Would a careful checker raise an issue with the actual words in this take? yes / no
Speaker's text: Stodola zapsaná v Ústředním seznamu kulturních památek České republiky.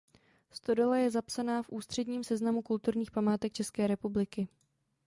yes